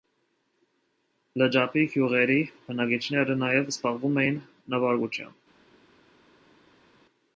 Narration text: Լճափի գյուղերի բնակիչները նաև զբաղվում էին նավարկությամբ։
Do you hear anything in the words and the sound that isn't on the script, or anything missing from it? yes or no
no